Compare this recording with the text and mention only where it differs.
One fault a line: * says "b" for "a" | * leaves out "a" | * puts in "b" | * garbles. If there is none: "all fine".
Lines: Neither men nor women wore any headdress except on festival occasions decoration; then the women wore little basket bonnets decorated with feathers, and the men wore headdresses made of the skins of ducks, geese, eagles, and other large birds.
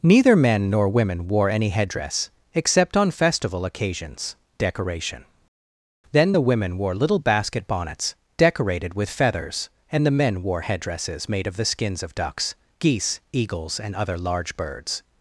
all fine